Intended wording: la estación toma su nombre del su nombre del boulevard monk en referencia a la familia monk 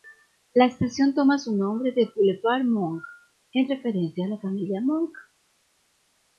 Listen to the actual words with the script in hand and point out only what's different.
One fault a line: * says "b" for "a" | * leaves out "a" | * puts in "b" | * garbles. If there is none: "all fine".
* leaves out "su nombre del"